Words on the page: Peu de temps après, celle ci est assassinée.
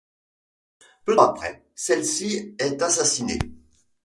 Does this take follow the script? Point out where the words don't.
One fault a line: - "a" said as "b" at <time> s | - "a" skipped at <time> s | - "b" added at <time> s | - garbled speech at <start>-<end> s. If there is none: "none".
- "de temps" skipped at 1.1 s